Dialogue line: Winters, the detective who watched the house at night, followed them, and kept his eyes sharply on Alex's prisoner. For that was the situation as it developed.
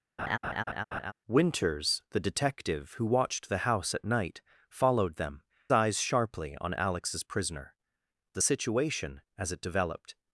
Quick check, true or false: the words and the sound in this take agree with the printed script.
false